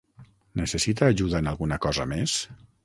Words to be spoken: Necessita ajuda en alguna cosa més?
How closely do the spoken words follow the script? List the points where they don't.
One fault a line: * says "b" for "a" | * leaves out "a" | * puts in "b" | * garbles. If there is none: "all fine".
all fine